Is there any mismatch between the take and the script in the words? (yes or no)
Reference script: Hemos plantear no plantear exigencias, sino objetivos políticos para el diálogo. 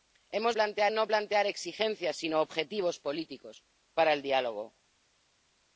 no